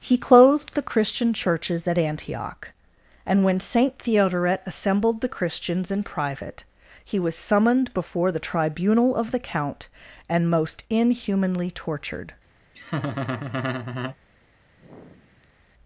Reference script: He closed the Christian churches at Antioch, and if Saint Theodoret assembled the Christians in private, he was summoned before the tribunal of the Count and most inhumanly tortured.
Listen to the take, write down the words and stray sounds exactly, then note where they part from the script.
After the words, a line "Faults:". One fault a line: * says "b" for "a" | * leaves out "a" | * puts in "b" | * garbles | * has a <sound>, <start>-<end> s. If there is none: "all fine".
He closed the Christian churches at Antioch, and when Saint Theodoret assembled the Christians in private, he was summoned before the tribunal of the Count and most inhumanly tortured.
Faults:
* says "when" for "if"
* has a laugh, 12.7-14.2 s
* has a sigh, 14.8-15.6 s